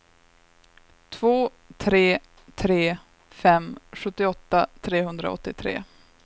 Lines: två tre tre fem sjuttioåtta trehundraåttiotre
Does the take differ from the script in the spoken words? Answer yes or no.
no